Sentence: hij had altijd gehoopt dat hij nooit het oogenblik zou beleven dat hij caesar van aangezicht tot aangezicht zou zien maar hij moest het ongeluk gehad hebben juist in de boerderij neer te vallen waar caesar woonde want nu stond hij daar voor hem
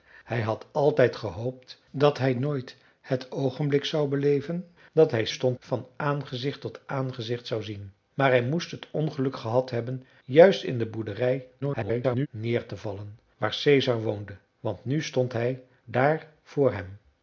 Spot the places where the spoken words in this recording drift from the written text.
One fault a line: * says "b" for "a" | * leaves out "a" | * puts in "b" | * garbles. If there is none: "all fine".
* says "stond" for "caesar"
* garbles